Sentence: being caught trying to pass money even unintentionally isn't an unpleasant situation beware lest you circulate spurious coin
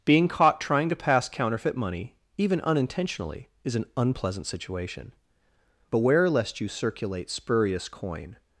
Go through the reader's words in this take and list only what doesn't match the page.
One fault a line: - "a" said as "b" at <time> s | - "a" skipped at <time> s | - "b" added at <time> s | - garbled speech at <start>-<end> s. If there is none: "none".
- "counterfeit" added at 1.3 s
- "isn't" said as "is" at 3.6 s